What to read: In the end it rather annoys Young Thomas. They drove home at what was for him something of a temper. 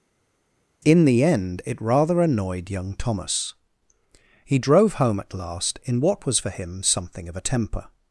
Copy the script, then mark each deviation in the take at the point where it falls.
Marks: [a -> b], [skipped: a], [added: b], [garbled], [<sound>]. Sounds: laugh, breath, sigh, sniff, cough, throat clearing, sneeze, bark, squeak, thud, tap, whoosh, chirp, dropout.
In the end it rather [annoys -> annoyed] Young Thomas. [They -> He] drove home at [added: last in] what was for him something of a temper.